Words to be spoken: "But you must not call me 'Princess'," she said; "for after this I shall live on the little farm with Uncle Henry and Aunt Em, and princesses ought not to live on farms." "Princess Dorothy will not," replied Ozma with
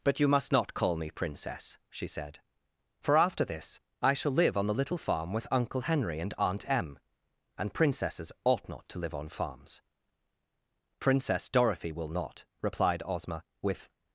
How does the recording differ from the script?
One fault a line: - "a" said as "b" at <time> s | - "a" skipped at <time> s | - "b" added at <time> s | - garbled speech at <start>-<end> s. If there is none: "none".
none